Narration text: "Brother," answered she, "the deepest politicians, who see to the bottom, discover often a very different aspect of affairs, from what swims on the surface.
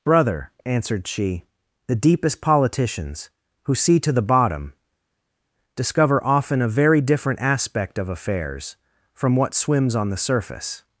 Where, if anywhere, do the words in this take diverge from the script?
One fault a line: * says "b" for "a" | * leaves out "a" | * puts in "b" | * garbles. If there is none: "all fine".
all fine